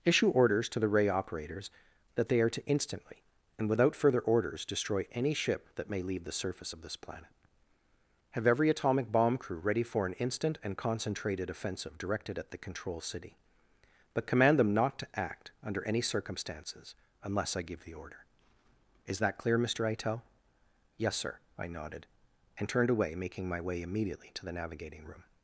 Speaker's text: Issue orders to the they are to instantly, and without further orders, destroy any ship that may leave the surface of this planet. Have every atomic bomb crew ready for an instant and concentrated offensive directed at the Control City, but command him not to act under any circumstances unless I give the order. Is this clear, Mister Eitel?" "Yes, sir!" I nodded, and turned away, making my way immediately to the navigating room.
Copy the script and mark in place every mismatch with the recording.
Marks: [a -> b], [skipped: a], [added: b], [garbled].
Issue orders to the [added: ray operators that] they are to instantly, and without further orders, destroy any ship that may leave the surface of this planet. Have every atomic bomb crew ready for an instant and concentrated offensive directed at the Control City, but command [him -> them] not to act under any circumstances unless I give the order. Is [this -> that] clear, Mister Eitel?" "Yes, sir!" I nodded, and turned away, making my way immediately to the navigating room.